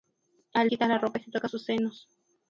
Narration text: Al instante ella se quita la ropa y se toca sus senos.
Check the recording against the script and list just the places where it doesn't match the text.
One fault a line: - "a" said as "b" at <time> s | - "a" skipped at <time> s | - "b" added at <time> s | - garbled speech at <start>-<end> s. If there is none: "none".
- "instante ella se" skipped at 0.7 s